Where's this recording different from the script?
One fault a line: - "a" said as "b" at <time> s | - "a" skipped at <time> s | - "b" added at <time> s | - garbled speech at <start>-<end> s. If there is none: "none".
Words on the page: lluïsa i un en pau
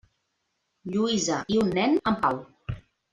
- "nen" added at 1.8 s